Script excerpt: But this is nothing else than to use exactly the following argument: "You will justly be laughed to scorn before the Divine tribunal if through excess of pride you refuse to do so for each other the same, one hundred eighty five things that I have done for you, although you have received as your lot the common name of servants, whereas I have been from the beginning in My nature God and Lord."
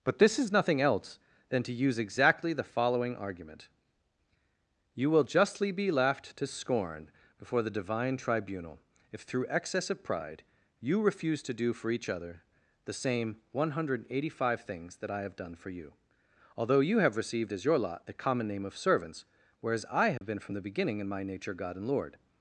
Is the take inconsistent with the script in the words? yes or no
yes